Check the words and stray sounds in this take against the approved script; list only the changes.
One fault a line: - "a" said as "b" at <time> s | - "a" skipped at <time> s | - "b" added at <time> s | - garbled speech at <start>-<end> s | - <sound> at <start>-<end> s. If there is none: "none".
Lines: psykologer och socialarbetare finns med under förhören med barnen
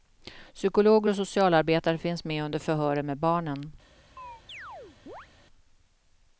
- chirp at 4.2-5.3 s